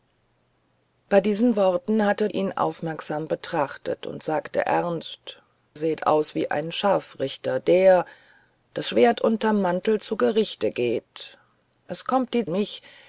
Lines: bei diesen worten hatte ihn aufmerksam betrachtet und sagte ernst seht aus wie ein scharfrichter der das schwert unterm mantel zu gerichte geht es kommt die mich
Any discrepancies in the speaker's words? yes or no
no